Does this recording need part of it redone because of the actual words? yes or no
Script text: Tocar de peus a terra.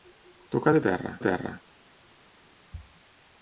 yes